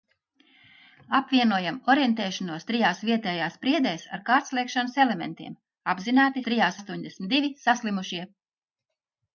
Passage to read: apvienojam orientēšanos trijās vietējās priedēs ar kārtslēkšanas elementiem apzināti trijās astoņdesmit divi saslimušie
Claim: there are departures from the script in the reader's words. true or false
false